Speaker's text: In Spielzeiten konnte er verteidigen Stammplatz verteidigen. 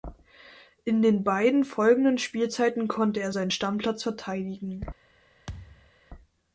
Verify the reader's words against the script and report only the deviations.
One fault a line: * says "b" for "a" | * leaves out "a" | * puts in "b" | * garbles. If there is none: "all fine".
* puts in "den beiden folgenden"
* says "seinen" for "verteidigen"